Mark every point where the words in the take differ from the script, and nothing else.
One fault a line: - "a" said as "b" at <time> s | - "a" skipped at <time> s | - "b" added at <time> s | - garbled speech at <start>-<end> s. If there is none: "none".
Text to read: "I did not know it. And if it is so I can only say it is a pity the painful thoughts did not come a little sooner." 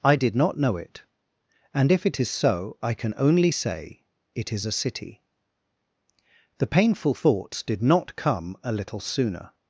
- "pity" said as "city" at 4.7 s